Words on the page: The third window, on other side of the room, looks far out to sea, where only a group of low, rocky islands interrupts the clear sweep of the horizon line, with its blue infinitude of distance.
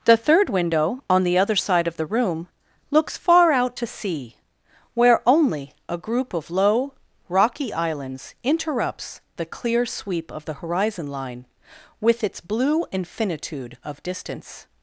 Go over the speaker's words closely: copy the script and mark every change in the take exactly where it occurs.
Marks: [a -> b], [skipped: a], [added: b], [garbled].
The third window, on [added: the] other side of the room, looks far out to sea, where only a group of low, rocky islands interrupts the clear sweep of the horizon line, with its blue infinitude of distance.